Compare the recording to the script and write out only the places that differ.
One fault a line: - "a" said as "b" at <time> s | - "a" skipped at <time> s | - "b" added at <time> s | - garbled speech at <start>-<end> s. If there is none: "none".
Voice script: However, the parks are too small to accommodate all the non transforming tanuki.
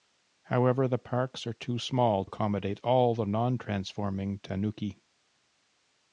- "to" skipped at 2.2 s